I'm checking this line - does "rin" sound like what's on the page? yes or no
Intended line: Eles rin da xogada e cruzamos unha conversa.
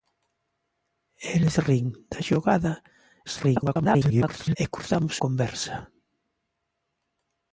yes